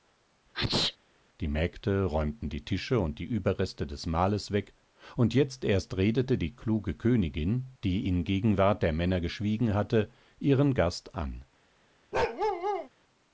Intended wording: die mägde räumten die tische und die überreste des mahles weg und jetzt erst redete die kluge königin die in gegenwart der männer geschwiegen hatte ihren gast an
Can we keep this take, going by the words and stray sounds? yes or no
no